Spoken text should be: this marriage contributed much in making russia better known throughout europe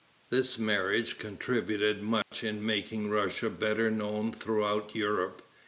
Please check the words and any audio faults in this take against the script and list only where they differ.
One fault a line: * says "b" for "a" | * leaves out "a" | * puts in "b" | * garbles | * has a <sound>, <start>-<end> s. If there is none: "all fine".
* has a dropout, 2.2-2.3 s